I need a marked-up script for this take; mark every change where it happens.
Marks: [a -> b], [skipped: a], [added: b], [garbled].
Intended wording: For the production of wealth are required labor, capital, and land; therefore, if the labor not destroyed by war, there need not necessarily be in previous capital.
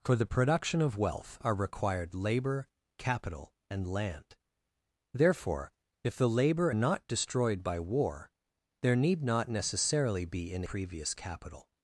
For the production of wealth are required labor, capital, and land; therefore, if the labor not destroyed by war, there need not necessarily be in previous capital.